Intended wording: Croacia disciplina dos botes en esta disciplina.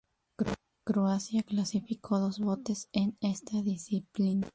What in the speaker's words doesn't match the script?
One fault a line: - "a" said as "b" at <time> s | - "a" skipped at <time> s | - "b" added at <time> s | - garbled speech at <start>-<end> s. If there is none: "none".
- "disciplina" said as "clasificó" at 1.4 s